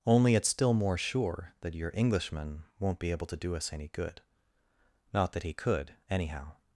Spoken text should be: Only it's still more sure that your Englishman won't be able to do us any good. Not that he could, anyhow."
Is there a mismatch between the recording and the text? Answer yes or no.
no